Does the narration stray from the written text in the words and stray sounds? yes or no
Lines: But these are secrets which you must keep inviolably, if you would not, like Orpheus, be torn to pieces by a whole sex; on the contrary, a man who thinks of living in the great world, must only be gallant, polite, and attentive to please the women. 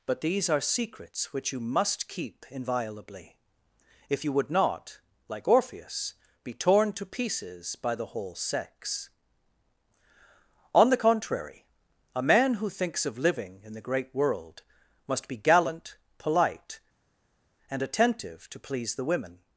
yes